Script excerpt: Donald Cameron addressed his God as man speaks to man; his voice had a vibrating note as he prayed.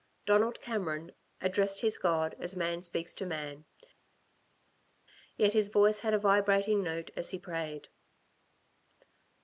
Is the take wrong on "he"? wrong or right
right